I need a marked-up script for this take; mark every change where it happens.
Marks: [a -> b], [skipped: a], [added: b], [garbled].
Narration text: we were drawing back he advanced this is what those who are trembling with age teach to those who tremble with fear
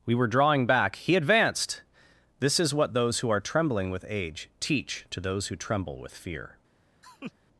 we were drawing back he advanced this is what those who are trembling with age teach to those who tremble with fear